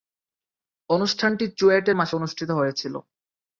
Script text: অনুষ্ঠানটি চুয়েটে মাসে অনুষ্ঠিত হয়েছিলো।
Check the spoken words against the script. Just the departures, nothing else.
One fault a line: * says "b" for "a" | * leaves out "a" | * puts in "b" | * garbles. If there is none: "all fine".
all fine